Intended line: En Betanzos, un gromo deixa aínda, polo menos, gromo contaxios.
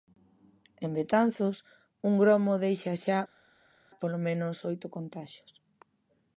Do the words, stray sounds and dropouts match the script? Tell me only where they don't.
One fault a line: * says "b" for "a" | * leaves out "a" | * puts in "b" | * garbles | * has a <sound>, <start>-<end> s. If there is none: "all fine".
* says "xa" for "aínda"
* says "oito" for "gromo"